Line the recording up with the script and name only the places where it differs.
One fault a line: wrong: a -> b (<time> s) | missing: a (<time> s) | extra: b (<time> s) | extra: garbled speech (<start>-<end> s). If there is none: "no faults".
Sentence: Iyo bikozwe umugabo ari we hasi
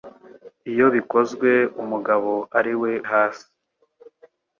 no faults